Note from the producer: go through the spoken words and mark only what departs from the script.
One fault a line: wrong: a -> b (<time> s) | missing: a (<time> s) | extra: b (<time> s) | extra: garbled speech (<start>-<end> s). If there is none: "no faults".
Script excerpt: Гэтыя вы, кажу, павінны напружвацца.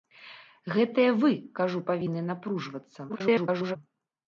extra: garbled speech (3.1-3.8 s)